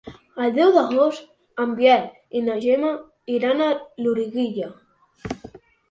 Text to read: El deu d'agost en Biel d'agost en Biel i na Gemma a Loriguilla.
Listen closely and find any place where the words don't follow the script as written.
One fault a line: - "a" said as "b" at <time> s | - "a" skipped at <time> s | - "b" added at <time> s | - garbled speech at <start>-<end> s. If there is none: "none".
- "d'agost en Biel" skipped at 2.1 s
- "iran" added at 3.4 s